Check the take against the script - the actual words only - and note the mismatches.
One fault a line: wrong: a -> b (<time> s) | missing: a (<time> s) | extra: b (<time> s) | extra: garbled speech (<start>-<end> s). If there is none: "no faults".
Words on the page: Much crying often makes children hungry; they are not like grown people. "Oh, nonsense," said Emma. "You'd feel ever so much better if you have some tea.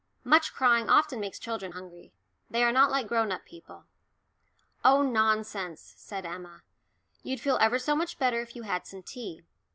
extra: up (3.3 s)
wrong: have -> had (8.6 s)